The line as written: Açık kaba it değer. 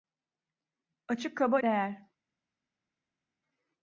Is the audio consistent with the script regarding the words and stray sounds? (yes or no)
no